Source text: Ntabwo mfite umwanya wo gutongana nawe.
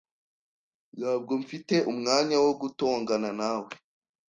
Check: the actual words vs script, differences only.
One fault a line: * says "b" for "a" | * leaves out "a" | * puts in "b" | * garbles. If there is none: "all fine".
all fine